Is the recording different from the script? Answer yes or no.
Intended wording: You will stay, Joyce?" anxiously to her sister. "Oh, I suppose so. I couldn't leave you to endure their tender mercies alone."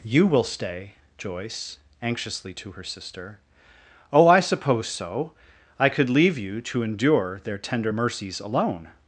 yes